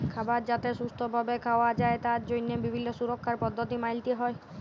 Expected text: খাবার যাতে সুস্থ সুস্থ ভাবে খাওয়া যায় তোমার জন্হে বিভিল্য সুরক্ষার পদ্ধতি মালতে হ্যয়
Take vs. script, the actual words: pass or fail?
fail